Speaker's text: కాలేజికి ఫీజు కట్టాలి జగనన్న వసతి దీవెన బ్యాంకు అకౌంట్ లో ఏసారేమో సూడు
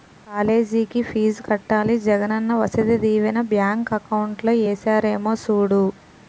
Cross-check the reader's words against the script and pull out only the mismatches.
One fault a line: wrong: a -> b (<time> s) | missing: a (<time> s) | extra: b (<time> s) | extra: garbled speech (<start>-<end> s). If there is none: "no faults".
no faults